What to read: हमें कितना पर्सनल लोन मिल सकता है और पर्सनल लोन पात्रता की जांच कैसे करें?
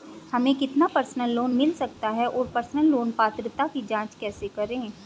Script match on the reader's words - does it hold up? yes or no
yes